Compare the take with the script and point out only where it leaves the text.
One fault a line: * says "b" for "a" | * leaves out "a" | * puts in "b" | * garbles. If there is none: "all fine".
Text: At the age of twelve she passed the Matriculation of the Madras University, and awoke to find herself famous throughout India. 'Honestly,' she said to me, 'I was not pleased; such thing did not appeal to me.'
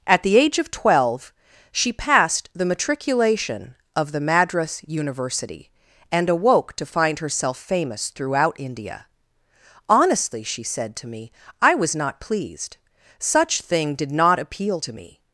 all fine